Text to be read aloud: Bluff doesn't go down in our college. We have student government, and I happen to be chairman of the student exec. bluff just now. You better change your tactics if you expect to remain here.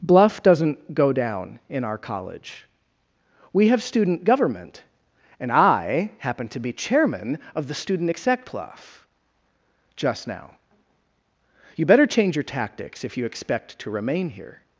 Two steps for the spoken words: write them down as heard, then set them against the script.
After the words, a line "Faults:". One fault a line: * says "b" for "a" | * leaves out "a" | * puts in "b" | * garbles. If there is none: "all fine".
Bluff doesn't go down in our college. We have student government, and I happen to be chairman of the student exec. bluff just now. You better change your tactics if you expect to remain here.
Faults:
all fine